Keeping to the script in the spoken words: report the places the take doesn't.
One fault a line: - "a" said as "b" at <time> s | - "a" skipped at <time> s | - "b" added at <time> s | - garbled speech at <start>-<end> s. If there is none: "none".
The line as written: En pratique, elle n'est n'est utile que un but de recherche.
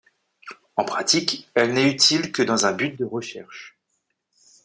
- "n'est" skipped at 1.9 s
- "dans" added at 2.4 s